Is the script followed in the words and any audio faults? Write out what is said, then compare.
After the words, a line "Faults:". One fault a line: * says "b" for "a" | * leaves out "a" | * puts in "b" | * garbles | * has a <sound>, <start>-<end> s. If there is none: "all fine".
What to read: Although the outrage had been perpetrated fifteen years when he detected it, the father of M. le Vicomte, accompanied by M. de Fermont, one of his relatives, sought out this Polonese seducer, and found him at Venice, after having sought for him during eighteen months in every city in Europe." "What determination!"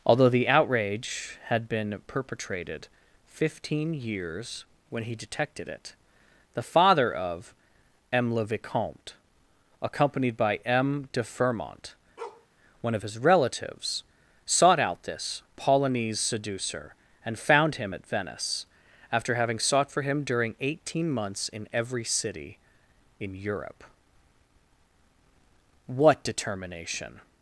Although the outrage had been perpetrated fifteen years when he detected it, the father of M. le Vicomte, accompanied by M. de Fermont, one of his relatives, sought out this Polonese seducer, and found him at Venice, after having sought for him during eighteen months in every city in Europe." "What determination!"
Faults:
* has a bark, 12.2-12.5 s